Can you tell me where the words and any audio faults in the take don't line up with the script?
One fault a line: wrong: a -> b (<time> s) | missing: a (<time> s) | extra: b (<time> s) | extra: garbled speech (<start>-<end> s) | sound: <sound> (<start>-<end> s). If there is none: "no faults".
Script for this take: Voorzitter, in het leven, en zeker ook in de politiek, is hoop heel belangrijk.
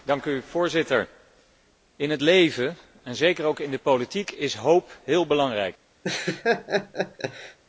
sound: laugh (6.0-7.6 s)